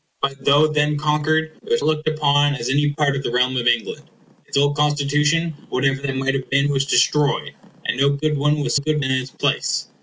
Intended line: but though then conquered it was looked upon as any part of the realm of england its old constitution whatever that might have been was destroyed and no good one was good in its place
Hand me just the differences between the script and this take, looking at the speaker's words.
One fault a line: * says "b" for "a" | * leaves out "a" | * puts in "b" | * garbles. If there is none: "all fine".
all fine